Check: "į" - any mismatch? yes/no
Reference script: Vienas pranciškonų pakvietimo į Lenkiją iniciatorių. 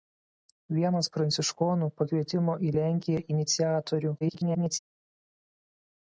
no